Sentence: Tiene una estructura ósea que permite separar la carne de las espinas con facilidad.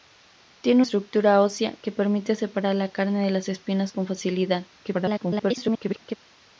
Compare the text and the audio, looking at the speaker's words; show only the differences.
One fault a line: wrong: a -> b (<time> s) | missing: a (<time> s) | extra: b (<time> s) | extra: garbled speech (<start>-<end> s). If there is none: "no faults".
missing: una (0.8 s)
extra: garbled speech (4.8-6.2 s)